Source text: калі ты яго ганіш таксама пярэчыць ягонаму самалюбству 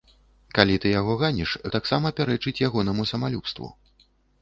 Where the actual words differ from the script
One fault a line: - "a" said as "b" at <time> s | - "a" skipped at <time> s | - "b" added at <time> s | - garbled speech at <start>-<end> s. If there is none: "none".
none